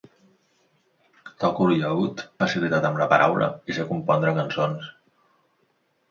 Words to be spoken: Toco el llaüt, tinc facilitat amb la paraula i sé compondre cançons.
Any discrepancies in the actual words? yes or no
yes